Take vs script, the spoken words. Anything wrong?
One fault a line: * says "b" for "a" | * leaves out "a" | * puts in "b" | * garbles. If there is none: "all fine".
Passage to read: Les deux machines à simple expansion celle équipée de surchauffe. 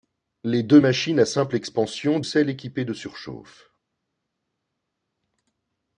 all fine